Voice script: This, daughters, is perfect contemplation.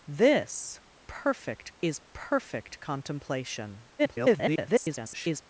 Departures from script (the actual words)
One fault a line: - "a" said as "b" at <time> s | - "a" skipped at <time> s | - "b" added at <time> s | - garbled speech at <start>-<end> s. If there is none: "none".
- "daughters" said as "perfect" at 1.1 s
- garbled speech at 4.0-5.4 s